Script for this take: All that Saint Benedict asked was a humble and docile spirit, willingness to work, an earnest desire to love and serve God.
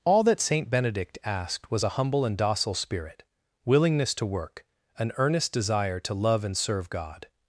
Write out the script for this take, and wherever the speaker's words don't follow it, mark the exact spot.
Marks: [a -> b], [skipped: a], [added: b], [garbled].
All that Saint Benedict asked was a humble and docile spirit, willingness to work, an earnest desire to love and serve God.